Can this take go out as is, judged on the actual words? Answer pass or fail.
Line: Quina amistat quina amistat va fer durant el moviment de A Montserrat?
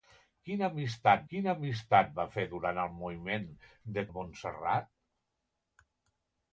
pass